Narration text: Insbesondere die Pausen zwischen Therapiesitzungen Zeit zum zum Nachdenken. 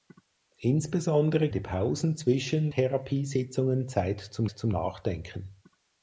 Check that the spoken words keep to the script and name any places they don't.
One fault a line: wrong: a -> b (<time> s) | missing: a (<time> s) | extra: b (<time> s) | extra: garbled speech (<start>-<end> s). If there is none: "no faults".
no faults